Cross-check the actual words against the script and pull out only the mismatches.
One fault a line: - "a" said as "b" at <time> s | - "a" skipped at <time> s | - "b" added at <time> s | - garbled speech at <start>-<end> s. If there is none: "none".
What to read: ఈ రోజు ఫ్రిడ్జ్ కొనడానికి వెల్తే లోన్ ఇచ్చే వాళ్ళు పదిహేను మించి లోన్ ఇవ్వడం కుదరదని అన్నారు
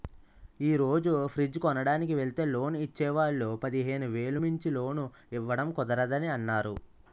- "వేలు" added at 4.1 s